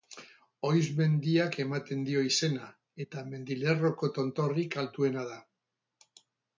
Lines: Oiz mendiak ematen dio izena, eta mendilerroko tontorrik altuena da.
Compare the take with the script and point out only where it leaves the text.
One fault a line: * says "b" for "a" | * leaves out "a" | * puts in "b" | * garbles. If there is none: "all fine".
all fine